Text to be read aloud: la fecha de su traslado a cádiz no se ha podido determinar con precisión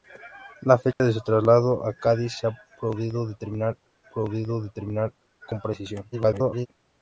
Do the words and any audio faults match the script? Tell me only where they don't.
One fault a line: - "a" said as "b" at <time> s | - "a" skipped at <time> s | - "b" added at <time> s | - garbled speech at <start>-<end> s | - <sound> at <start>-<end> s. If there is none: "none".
- dropout at 0.9-1.0 s
- "no" skipped at 2.3 s
- "podido determinar" added at 4.1 s
- garbled speech at 6.1-6.7 s